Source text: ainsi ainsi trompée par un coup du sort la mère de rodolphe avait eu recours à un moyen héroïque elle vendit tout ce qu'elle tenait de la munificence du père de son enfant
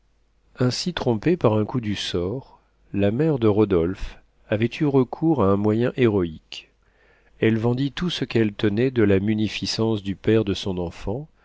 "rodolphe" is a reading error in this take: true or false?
false